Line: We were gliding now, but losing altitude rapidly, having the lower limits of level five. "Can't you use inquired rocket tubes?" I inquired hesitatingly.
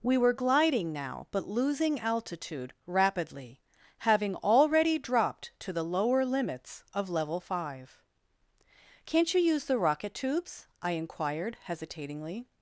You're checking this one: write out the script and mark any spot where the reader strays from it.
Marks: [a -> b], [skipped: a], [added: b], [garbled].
We were gliding now, but losing altitude rapidly, having [added: already dropped to] the lower limits of level five. "Can't you use [inquired -> the] rocket tubes?" I inquired hesitatingly.